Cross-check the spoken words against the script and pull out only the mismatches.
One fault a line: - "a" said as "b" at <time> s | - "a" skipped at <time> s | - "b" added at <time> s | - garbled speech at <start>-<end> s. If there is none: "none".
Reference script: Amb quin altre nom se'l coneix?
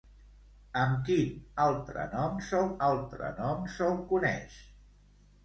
- "altre nom se'l" added at 2.9 s